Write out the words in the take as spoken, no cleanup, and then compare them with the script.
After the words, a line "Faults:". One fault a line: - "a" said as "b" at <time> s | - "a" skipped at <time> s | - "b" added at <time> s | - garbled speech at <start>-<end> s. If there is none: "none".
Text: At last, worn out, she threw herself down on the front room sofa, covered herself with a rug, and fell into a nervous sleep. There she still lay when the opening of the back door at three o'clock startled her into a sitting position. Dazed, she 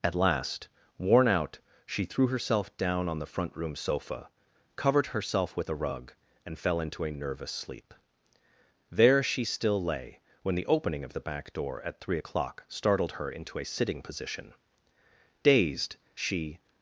At last, worn out, she threw herself down on the front room sofa, covered herself with a rug, and fell into a nervous sleep. There she still lay when the opening of the back door at three o'clock startled her into a sitting position. Dazed, she
Faults:
none